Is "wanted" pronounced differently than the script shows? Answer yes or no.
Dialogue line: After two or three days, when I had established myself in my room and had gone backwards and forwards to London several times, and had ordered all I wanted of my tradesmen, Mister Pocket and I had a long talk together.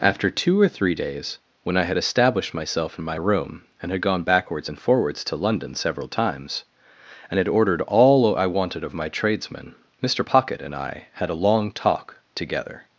no